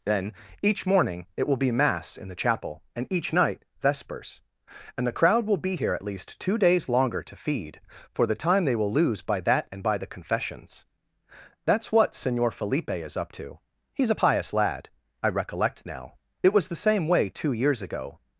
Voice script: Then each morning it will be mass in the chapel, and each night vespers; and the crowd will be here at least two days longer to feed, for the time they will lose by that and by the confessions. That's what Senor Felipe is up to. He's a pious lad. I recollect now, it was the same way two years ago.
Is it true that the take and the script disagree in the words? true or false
false